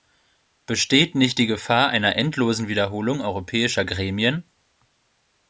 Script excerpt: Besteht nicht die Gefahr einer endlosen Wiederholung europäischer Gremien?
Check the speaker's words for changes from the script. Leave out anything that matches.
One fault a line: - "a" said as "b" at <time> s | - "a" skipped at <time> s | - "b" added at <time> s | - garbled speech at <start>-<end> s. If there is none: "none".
none